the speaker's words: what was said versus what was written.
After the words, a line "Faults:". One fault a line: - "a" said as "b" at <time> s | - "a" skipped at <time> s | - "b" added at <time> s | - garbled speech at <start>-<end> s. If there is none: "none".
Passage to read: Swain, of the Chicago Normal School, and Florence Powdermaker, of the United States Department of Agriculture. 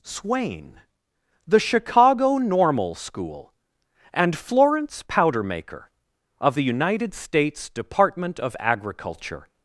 Swain, the Chicago Normal School, and Florence Powdermaker, of the United States Department of Agriculture.
Faults:
- "of" skipped at 0.8 s